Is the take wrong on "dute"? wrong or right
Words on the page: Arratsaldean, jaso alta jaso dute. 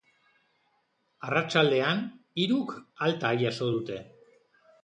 right